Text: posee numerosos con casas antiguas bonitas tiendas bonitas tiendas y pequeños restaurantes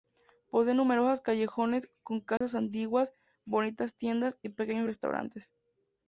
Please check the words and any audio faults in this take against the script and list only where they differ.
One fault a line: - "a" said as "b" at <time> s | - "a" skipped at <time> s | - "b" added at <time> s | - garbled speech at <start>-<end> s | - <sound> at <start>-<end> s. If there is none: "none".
- "callejones" added at 1.2 s
- dropout at 2.4-2.4 s
- "bonitas tiendas" skipped at 4.3 s